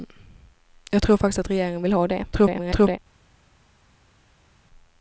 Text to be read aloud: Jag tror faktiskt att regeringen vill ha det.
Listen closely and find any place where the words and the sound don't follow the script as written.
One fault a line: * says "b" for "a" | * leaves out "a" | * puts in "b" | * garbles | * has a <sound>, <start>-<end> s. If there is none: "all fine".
* garbles